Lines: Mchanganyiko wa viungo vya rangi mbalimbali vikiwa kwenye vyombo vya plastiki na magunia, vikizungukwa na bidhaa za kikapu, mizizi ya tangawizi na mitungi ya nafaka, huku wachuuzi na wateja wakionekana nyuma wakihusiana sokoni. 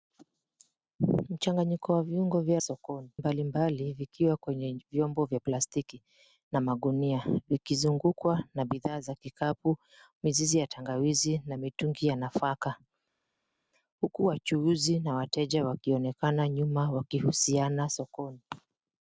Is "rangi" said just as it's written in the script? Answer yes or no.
no